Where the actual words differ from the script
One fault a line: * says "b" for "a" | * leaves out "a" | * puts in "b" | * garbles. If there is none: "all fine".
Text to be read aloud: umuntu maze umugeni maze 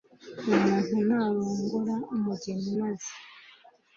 * says "narongora" for "maze"